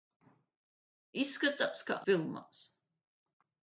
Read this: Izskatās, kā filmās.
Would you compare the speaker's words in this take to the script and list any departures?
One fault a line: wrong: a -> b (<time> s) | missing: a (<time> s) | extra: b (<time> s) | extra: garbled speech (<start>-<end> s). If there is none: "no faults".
no faults